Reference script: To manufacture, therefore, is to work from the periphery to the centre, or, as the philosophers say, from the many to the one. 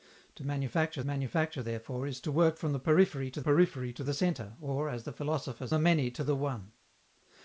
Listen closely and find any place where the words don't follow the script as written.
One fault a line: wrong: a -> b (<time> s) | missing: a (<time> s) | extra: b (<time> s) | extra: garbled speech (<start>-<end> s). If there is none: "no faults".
extra: manufacture (1.0 s)
extra: periphery to (3.4 s)
missing: say from (5.7 s)